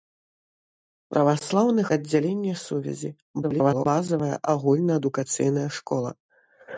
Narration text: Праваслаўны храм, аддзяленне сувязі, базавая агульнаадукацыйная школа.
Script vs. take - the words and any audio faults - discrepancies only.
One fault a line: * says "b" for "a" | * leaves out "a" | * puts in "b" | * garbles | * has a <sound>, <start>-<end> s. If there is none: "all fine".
* leaves out "храм"
* garbles